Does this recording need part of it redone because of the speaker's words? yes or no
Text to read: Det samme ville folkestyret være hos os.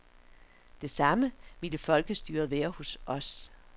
no